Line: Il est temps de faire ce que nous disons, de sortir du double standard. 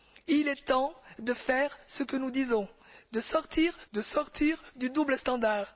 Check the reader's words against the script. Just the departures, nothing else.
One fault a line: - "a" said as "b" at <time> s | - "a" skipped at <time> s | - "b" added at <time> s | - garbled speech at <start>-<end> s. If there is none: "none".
- "de sortir" added at 3.9 s